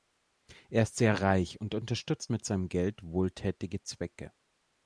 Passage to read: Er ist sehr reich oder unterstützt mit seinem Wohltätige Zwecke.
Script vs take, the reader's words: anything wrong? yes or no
yes